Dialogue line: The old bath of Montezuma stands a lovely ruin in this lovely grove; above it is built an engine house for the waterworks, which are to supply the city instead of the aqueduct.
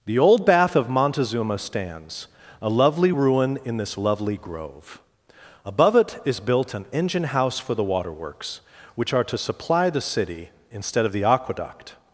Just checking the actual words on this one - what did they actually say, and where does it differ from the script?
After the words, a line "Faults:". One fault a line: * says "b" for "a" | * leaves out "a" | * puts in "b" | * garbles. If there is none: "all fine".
The old bath of Montezuma stands a lovely ruin in this lovely grove; above it is built an engine house for the waterworks, which are to supply the city instead of the aqueduct.
Faults:
all fine